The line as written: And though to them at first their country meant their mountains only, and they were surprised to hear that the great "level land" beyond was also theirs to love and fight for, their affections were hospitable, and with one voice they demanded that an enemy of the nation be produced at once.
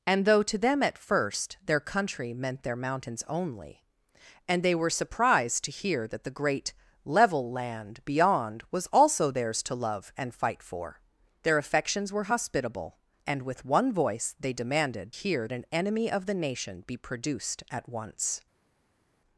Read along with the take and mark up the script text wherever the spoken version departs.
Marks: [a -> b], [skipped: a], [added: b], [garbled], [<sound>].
And though to them at first their country meant their mountains only, and they were surprised to hear that the great "level land" beyond was also theirs to love and fight for, their affections were hospitable, and with one voice they demanded [that -> hear] an enemy of the nation be produced at once.